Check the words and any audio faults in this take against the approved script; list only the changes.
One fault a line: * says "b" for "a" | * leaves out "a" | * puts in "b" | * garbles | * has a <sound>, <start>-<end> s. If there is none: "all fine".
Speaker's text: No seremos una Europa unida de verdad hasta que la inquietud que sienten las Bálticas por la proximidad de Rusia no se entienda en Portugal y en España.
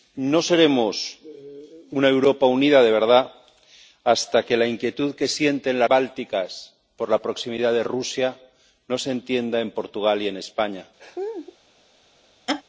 * has a laugh, 11.0-11.6 s
* has a laugh, 12.5-12.6 s